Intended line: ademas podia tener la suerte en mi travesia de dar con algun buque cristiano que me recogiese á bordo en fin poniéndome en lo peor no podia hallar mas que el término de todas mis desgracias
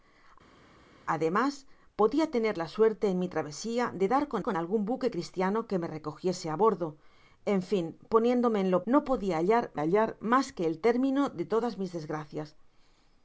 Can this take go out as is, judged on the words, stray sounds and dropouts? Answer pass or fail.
fail